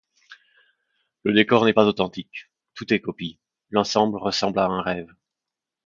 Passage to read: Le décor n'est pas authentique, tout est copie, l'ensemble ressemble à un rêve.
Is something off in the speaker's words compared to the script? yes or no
no